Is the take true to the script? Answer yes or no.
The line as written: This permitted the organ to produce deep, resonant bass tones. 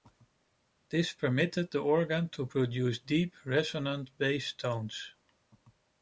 yes